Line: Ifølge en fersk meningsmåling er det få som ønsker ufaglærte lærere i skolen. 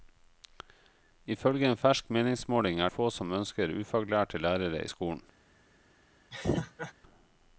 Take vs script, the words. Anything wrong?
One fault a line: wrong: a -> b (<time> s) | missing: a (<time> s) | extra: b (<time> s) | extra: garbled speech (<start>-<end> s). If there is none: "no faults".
missing: det (2.9 s)